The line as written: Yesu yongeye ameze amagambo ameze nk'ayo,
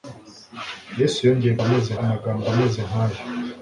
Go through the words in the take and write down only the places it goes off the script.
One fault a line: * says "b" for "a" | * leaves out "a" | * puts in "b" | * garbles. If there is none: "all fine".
all fine